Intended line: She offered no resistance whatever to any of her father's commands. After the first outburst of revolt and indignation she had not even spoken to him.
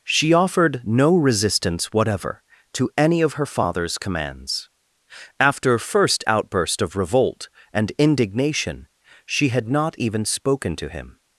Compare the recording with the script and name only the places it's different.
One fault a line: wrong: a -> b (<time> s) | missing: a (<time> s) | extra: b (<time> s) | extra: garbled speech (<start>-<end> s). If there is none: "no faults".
missing: the (5.8 s)